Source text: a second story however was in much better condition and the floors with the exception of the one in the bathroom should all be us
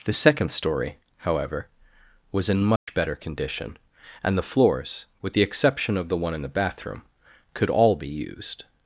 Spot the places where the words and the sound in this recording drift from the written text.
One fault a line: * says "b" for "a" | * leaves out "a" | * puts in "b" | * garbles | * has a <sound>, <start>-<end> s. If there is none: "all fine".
* says "the" for "a"
* has a dropout, 2.8-2.9 s
* says "could" for "should"
* says "used" for "us"